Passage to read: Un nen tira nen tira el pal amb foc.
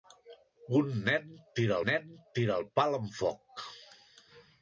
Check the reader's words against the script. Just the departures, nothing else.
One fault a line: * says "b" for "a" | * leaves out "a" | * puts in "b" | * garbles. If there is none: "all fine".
all fine